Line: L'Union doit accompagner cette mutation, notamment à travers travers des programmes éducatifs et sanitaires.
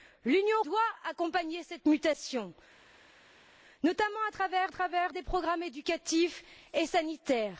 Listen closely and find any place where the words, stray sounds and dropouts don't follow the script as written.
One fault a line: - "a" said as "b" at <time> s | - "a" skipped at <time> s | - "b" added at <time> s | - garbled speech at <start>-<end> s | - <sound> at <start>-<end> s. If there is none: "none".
none